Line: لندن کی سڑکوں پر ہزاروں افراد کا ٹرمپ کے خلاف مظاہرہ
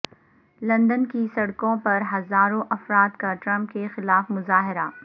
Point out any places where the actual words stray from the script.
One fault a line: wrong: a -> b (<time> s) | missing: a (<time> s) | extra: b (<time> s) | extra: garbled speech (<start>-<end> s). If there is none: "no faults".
no faults